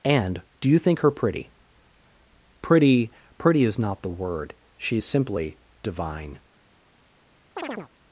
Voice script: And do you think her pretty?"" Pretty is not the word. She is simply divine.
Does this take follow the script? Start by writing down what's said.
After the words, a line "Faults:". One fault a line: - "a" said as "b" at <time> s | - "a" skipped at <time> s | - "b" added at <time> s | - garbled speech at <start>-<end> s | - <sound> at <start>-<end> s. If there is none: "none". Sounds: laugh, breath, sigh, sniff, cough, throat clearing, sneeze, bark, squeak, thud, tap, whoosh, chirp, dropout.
And do you think her pretty?"" Pretty pretty is not the word. She is simply divine.
Faults:
- "pretty" added at 3.4 s
- chirp at 7.6-7.9 s